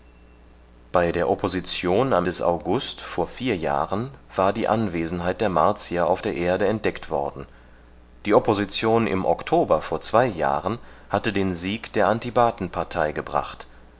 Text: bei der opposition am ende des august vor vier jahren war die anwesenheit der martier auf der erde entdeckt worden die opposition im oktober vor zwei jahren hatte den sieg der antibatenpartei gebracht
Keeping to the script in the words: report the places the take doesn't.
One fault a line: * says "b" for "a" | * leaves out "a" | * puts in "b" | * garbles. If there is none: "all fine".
* leaves out "ende"